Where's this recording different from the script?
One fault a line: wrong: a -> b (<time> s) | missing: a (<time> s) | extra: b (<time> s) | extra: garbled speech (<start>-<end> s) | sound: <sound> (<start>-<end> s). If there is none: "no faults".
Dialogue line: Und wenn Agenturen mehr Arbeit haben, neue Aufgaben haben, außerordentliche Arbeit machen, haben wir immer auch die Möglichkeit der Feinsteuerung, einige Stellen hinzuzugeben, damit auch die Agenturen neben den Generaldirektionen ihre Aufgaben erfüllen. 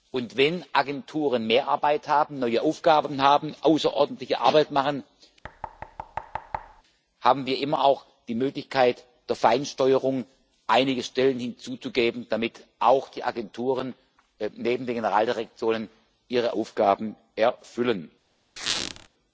sound: thud (5.4-6.8 s)
sound: squeak (18.6-19.1 s)